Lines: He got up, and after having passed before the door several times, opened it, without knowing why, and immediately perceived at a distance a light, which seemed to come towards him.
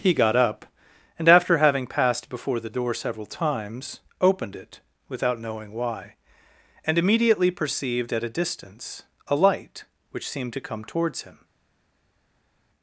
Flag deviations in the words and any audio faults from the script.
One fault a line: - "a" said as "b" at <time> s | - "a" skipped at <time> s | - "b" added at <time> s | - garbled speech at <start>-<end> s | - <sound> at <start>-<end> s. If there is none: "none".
none